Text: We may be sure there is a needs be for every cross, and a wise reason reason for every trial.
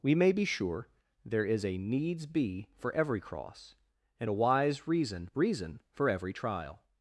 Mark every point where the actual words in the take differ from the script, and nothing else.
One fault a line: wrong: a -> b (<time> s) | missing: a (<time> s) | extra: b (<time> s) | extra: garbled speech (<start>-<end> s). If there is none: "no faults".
no faults